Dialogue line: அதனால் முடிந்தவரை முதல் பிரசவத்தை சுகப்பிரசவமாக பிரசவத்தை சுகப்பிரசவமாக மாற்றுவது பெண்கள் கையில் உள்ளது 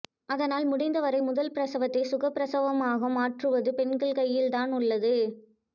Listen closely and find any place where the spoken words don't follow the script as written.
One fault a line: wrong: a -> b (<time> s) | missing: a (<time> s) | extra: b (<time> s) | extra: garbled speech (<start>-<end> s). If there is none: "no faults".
missing: பிரசவத்தை சுகப்பிரசவமாக (3.1 s)
extra: தான் (4.5 s)